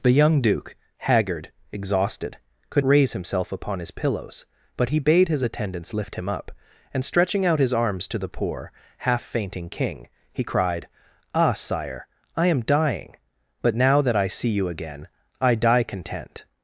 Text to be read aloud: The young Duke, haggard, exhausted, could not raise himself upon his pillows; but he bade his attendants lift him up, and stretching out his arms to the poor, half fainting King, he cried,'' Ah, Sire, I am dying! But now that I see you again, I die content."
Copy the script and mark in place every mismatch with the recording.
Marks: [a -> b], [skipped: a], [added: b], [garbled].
The young Duke, haggard, exhausted, could [skipped: not] raise himself upon his pillows; but he bade his attendants lift him up, and stretching out his arms to the poor, half fainting King, he cried,'' Ah, Sire, I am dying! But now that I see you again, I die content."